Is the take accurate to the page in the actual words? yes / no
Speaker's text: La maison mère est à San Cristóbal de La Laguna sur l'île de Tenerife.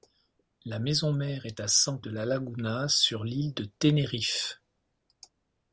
no